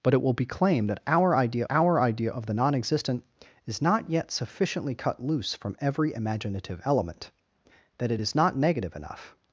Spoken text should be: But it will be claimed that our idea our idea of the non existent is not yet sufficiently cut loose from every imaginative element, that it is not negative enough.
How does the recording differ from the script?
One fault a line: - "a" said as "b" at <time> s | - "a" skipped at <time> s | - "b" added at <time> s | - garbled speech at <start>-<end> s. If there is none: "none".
none